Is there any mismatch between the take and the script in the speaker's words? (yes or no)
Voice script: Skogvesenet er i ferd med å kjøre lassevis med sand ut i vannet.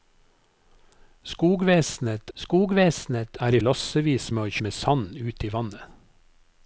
yes